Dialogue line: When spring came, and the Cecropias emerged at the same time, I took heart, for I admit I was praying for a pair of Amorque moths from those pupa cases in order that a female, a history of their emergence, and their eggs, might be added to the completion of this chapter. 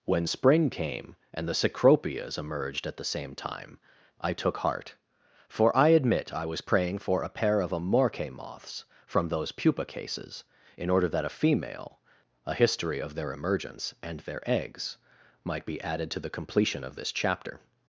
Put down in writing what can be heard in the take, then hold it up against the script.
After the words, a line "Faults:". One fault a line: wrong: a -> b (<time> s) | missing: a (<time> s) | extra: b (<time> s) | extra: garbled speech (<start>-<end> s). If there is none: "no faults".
When spring came, and the Cecropias emerged at the same time, I took heart, for I admit I was praying for a pair of Amorque moths from those pupa cases in order that a female, a history of their emergence, and their eggs, might be added to the completion of this chapter.
Faults:
no faults